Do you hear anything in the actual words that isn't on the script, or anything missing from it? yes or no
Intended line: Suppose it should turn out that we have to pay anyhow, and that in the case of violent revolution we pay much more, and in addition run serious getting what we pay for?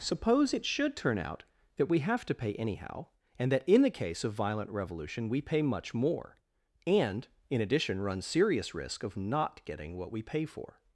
yes